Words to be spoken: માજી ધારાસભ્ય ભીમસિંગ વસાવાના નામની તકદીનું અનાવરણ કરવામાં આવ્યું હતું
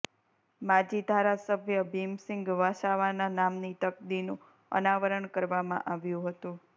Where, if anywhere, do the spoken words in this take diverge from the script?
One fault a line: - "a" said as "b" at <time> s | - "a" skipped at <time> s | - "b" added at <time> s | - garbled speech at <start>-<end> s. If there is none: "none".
none